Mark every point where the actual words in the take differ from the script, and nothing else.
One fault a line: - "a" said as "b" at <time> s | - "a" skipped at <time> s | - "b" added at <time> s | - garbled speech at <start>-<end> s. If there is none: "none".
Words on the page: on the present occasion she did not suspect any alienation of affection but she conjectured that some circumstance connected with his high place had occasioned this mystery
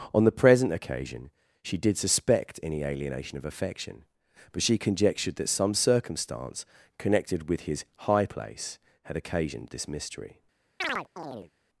- "not" skipped at 2.0 s